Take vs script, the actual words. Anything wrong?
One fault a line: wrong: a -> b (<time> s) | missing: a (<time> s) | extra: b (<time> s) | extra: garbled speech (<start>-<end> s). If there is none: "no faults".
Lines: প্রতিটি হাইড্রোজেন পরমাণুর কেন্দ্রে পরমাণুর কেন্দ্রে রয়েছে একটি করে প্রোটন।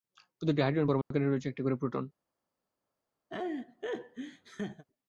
missing: পরমাণুর কেন্দ্রে (1.3 s)